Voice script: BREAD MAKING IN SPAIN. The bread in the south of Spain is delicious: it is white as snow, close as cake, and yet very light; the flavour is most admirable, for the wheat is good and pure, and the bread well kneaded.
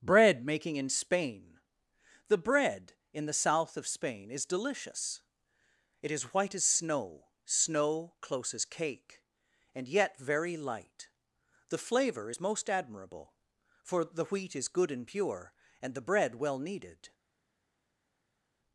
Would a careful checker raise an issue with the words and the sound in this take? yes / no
yes